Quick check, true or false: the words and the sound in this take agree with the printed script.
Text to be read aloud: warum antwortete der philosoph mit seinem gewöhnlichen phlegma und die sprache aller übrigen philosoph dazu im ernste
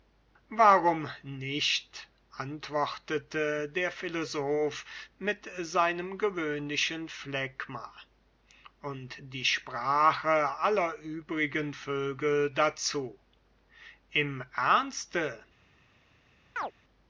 false